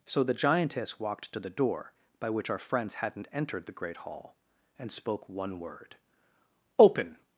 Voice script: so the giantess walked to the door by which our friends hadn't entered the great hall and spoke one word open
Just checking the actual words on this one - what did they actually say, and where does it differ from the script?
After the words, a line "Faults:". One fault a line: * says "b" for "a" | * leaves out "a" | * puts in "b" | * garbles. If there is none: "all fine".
so the giantess walked to the door by which our friends hadn't entered the great hall and spoke one word open
Faults:
all fine